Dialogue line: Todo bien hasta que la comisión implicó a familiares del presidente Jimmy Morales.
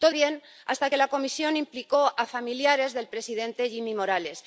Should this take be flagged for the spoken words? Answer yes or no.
no